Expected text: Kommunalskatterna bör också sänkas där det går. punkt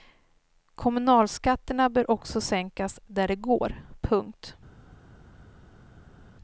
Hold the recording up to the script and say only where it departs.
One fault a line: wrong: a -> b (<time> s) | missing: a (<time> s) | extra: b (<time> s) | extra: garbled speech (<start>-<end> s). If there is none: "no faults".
no faults